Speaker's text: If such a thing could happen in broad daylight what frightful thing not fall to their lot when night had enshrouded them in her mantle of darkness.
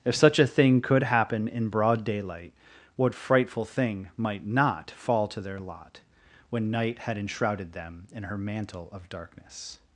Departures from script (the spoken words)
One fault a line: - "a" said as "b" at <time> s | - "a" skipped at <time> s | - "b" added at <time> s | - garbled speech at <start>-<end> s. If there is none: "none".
- "might" added at 4.2 s